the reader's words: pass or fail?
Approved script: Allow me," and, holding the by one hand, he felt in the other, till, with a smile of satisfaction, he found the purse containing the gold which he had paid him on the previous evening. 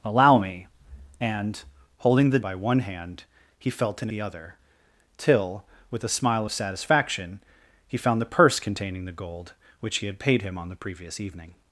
pass